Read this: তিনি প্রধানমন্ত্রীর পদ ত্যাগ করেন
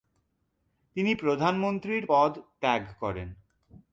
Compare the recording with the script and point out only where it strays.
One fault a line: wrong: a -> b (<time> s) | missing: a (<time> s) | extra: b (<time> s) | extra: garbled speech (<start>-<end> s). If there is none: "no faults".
no faults